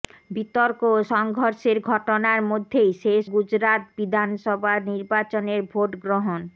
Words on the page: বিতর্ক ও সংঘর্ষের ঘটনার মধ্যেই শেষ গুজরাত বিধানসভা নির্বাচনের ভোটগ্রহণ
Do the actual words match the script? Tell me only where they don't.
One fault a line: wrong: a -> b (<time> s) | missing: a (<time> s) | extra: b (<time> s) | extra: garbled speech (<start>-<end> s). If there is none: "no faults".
no faults